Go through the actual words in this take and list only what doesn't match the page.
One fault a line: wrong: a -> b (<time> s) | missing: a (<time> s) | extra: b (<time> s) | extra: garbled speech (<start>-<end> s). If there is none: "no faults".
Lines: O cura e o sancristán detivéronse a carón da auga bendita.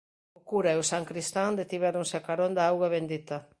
no faults